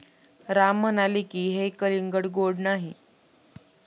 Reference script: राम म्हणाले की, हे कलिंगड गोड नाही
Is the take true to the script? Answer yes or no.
yes